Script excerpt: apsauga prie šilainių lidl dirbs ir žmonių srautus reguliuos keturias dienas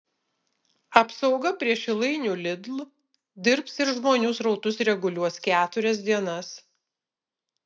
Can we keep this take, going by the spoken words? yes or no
yes